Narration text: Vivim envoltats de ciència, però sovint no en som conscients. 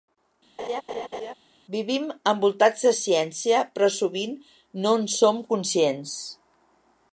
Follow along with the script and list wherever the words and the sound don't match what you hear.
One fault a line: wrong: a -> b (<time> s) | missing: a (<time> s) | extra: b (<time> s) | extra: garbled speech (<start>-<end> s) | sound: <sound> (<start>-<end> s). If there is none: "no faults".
sound: laugh (0.6-1.3 s)